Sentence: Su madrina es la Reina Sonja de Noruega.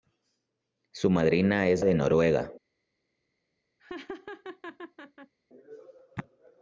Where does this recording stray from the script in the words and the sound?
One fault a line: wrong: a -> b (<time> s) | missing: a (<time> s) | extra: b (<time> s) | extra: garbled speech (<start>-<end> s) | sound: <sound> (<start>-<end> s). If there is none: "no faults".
missing: la Reina Sonja (1.9 s)
sound: laugh (3.8-5.3 s)